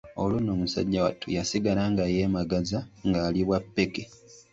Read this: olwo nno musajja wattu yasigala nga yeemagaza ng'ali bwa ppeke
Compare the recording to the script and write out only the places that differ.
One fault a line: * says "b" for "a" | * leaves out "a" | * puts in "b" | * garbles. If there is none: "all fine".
all fine